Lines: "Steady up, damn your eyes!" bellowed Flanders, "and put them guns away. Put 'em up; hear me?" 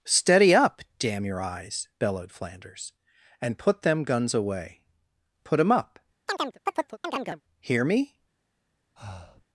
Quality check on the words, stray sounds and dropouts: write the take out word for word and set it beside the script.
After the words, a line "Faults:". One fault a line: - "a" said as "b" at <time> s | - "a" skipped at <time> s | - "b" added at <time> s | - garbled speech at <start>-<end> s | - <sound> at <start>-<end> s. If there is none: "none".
"Steady up, damn your eyes!" bellowed Flanders, "and put them guns away. Put 'em up; hear me?"
Faults:
- chirp at 6.3-7.4 s
- breath at 9.0-9.5 s